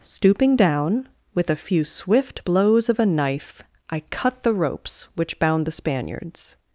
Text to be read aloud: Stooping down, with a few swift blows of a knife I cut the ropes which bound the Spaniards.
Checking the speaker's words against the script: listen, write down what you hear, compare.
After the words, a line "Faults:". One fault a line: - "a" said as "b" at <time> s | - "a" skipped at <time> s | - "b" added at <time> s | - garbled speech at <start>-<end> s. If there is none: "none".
Stooping down, with a few swift blows of a knife I cut the ropes which bound the Spaniards.
Faults:
none